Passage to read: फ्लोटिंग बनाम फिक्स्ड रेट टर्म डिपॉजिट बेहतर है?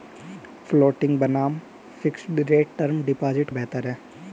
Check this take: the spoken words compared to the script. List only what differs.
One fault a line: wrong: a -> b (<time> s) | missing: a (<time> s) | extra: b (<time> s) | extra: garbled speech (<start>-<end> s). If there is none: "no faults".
no faults